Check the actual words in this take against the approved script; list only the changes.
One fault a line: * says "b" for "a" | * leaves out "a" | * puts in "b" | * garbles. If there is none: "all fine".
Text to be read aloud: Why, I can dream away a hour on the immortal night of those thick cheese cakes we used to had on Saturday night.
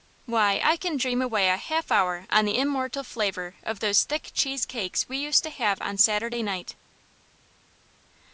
* puts in "half"
* says "flavor" for "night"
* says "have" for "had"